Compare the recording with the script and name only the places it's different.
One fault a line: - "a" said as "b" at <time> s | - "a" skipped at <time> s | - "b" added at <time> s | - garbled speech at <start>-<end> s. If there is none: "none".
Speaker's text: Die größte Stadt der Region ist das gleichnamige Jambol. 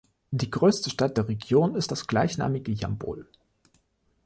none